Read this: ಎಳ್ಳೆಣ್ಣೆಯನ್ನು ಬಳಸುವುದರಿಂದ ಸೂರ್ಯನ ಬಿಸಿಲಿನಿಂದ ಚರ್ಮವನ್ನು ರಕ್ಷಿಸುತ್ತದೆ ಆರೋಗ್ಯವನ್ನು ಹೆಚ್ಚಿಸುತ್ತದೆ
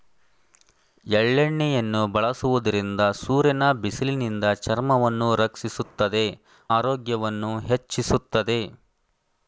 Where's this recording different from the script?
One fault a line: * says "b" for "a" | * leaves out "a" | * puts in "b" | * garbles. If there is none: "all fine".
all fine